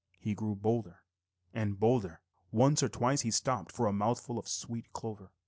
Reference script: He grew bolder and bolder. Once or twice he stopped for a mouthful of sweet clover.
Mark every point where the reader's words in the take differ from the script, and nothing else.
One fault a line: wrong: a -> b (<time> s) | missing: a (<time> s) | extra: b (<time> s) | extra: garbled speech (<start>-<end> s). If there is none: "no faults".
no faults